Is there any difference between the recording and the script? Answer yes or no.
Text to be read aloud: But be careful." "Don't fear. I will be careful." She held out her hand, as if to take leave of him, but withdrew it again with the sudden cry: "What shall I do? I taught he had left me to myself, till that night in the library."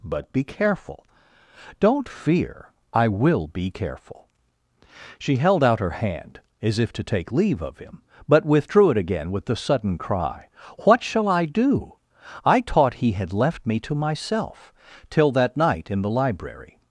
no